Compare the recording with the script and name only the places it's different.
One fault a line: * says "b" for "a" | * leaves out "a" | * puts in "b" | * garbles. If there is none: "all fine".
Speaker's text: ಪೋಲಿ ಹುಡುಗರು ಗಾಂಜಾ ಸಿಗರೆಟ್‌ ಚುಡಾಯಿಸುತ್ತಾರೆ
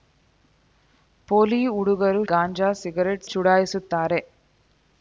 all fine